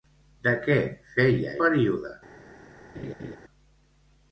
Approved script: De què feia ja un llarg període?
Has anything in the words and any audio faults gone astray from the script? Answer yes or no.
yes